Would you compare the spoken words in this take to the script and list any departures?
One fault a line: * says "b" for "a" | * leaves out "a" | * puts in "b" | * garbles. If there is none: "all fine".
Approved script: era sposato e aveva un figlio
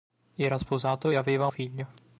* leaves out "un"